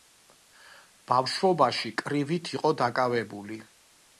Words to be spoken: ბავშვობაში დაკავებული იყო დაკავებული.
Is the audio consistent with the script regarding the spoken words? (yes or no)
no